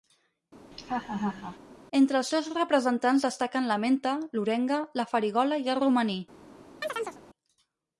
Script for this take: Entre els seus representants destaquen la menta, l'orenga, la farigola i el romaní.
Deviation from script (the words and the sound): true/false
true